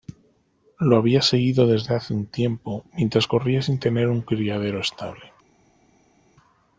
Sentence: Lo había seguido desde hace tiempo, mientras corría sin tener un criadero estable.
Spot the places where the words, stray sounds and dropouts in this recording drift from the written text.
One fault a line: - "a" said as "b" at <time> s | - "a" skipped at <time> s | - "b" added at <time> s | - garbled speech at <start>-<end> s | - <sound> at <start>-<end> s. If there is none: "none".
- "un" added at 2.1 s